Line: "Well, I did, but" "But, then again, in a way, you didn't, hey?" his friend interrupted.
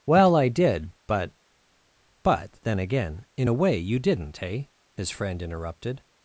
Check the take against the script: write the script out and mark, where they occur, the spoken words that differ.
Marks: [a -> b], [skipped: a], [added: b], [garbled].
"Well, I did, but" "But, then again, in a way, you didn't, hey?" his friend interrupted.